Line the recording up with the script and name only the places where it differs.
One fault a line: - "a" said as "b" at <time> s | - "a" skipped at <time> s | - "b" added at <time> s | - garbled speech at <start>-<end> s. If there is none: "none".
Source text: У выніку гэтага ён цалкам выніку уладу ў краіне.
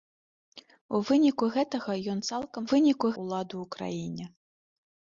none